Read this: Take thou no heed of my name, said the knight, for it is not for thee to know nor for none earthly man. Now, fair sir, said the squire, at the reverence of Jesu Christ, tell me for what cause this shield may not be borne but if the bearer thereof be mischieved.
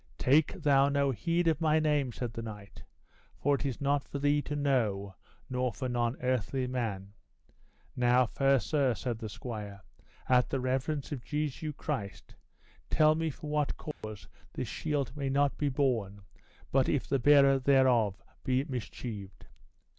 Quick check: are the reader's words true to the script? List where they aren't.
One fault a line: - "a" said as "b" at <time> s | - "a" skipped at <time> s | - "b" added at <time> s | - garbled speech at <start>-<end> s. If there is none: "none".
none